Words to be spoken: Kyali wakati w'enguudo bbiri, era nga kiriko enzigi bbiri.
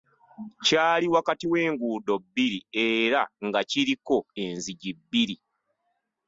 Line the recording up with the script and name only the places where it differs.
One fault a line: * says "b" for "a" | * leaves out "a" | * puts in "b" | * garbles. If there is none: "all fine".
all fine